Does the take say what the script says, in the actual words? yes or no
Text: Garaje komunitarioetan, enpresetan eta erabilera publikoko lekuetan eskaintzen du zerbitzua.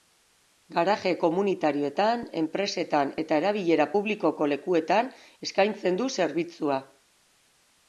yes